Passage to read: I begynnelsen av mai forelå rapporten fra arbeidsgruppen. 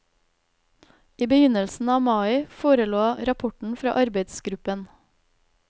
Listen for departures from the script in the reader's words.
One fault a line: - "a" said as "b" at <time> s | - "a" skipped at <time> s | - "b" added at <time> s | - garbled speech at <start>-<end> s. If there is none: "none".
none